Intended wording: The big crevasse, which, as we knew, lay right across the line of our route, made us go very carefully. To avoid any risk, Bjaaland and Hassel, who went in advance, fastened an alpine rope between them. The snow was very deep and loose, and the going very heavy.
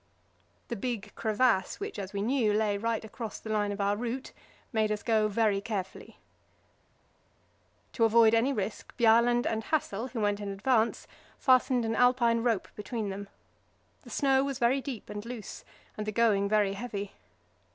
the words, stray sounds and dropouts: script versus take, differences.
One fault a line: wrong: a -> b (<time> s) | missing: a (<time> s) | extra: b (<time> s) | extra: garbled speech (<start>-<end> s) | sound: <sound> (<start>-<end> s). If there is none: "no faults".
no faults